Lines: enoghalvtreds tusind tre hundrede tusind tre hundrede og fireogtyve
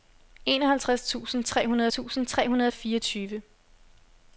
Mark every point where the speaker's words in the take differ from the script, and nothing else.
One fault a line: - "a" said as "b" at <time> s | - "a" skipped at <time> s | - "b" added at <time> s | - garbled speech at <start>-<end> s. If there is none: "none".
none